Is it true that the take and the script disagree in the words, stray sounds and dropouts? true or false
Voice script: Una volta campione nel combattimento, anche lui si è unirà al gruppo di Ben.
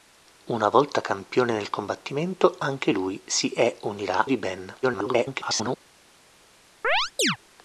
true